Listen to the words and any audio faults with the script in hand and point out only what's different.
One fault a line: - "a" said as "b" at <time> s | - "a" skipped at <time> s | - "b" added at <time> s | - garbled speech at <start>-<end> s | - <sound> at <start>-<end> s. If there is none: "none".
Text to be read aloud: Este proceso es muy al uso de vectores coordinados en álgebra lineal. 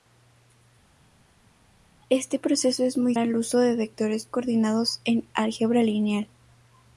none